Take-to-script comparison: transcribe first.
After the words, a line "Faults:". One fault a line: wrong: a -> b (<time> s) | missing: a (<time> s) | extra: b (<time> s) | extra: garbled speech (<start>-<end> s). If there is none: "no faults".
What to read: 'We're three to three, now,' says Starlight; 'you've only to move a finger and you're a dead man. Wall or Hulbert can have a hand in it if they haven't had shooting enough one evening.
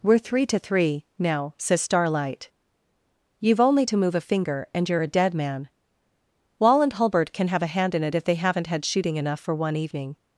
'We're three to three, now,' says Starlight; 'you've only to move a finger and you're a dead man. Wall and Hulbert can have a hand in it if they haven't had shooting enough for one evening.
Faults:
wrong: or -> and (6.8 s)
extra: for (9.4 s)